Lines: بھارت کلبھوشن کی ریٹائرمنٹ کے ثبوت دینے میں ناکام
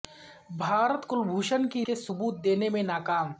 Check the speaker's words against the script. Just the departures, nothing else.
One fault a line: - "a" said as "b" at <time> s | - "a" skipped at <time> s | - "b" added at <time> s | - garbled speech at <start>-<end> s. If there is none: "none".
- "ریٹائرمنٹ" skipped at 1.9 s